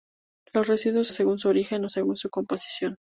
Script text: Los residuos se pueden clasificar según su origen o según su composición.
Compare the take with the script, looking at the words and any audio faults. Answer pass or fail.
fail